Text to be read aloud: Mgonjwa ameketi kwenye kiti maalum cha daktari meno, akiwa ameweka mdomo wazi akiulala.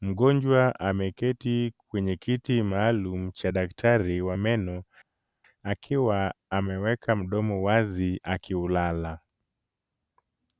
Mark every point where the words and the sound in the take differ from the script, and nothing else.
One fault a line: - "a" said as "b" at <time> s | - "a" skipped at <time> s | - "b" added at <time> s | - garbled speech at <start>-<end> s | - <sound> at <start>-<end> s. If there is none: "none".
- "wa" added at 4.2 s